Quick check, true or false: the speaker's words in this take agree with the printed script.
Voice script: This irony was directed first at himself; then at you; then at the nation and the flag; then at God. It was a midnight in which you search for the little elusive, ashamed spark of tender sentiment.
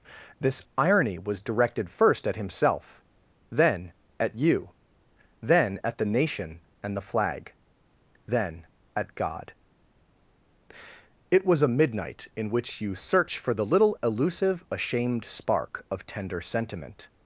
true